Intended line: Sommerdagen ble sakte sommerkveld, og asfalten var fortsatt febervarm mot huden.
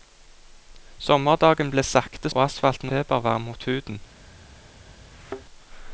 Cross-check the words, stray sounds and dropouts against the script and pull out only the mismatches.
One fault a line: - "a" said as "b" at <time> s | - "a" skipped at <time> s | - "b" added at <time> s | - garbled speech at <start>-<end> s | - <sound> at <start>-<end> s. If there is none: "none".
- "sommerkveld" skipped at 2.3 s
- "var fortsatt" skipped at 2.9 s
- thud at 5.1-5.4 s